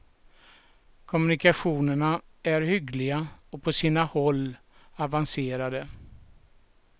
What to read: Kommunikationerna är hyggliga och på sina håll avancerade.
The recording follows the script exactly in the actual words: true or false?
true